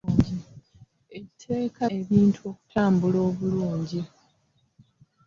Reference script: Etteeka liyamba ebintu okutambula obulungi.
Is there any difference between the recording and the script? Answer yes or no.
yes